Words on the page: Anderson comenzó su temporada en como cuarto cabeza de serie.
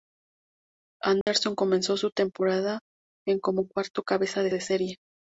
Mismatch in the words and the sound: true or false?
true